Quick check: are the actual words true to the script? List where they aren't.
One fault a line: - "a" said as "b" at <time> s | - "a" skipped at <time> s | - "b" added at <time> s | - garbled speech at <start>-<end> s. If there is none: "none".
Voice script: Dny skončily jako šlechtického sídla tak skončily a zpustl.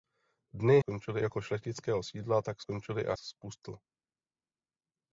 none